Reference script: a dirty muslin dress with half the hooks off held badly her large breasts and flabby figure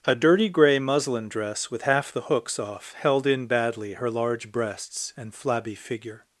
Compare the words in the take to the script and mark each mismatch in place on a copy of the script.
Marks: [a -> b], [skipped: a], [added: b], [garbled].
a dirty [added: grey] muslin dress with half the hooks off held [added: in] badly her large breasts and flabby figure